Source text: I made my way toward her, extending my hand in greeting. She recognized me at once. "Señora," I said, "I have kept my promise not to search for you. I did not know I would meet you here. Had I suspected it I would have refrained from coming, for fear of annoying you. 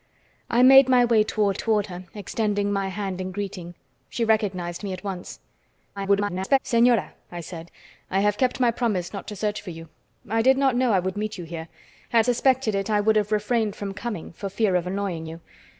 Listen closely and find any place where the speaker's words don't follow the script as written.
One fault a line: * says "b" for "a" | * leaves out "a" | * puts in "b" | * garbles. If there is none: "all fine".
* puts in "toward"
* garbles
* leaves out "I"